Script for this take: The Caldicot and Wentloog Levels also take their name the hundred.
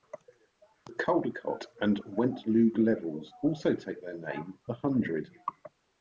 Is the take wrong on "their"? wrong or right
right